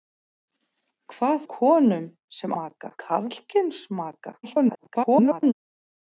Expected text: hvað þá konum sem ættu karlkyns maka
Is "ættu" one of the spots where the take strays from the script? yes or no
yes